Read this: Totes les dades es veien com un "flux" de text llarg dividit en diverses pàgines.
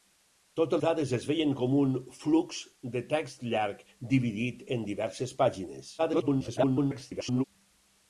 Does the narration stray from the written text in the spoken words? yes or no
yes